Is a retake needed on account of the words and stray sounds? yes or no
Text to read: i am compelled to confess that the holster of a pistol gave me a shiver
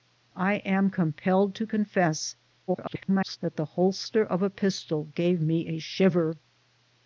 yes